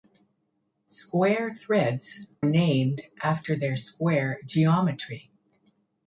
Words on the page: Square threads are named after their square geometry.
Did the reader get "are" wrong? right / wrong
wrong